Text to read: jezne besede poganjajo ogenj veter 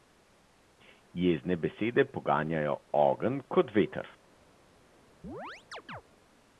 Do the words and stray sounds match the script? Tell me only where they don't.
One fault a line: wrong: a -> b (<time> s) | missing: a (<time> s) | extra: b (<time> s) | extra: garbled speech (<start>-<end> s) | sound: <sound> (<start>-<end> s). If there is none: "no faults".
extra: kot (3.5 s)
sound: chirp (5.2-6.0 s)